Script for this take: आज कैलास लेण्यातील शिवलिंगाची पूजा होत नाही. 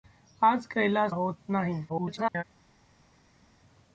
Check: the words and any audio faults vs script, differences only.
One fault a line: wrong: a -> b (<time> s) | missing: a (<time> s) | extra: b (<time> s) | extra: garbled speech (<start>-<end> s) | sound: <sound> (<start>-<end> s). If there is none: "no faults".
missing: लेण्यातील शिवलिंगाची पूजा (1.1 s)
extra: garbled speech (1.9-2.4 s)